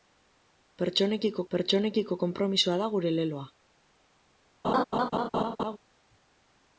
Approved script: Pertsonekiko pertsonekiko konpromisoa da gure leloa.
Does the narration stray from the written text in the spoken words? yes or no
no